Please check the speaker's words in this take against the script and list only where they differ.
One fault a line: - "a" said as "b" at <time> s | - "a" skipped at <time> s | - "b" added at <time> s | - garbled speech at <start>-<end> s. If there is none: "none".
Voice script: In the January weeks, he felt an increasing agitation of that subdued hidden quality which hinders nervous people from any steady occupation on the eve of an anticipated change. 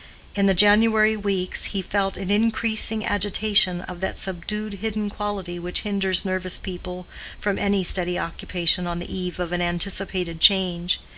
none